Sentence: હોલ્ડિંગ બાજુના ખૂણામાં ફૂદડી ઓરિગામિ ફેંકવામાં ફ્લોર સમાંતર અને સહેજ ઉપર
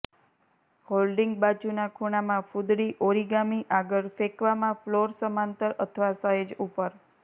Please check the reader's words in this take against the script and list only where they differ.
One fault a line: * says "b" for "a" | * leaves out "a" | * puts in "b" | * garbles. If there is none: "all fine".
* puts in "આગળ"
* says "અથવા" for "અને"